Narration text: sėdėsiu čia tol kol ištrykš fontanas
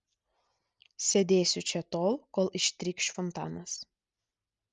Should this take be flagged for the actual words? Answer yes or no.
no